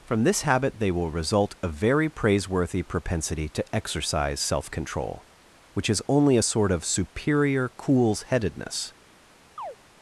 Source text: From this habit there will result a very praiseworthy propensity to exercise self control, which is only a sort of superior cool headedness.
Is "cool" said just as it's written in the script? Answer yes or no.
no